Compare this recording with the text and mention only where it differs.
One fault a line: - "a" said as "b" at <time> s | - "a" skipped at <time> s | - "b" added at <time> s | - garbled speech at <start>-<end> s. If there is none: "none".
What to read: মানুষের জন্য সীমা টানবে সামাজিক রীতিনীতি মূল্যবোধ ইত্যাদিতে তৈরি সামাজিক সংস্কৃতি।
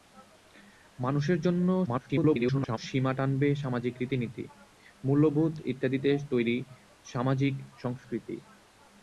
- garbled speech at 1.9-2.8 s